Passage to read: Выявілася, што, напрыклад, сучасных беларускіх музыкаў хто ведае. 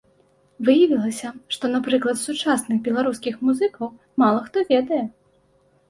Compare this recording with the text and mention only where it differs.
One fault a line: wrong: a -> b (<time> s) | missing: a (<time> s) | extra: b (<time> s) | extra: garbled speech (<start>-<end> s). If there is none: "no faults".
extra: мала (4.3 s)